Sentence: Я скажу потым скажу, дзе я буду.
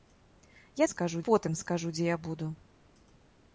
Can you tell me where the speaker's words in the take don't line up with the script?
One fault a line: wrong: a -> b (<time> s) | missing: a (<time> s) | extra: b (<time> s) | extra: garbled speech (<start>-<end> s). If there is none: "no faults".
no faults